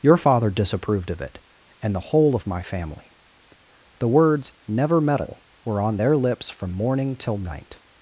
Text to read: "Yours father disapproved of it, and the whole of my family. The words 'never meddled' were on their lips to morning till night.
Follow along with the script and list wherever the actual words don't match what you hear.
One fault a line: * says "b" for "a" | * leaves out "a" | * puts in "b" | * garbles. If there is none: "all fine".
* says "Your" for "Yours"
* says "meddle" for "meddled"
* says "from" for "to"